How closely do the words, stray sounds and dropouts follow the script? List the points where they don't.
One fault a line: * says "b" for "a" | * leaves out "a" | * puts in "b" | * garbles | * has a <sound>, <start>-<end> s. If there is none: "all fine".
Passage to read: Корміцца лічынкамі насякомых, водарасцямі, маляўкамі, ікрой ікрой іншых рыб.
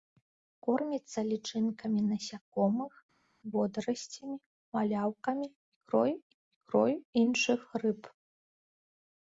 all fine